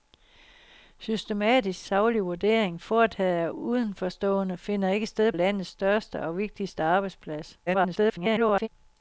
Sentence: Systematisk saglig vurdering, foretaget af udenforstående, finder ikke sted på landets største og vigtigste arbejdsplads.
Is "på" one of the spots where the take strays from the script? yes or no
yes